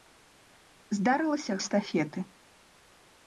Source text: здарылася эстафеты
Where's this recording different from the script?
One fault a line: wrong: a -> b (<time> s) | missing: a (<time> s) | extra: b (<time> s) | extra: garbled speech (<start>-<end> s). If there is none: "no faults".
no faults